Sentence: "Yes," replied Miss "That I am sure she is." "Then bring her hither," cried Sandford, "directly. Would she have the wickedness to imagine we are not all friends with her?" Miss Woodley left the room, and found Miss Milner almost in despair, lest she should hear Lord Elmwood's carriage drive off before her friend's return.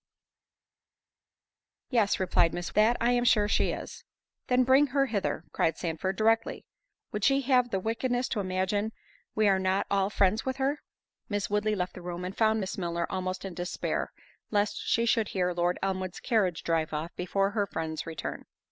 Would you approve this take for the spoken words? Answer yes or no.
yes